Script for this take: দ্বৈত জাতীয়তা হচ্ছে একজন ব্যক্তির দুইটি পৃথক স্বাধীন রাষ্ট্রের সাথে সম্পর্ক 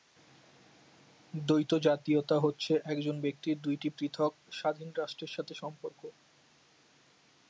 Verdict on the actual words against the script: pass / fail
pass